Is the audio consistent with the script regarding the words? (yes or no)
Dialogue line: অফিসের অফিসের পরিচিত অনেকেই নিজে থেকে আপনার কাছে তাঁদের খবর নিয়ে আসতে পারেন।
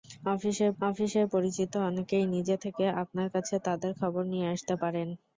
yes